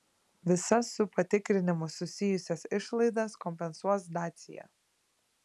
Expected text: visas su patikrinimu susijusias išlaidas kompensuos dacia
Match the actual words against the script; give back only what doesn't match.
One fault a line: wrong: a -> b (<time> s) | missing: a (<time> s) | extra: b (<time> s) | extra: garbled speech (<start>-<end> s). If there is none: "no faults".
no faults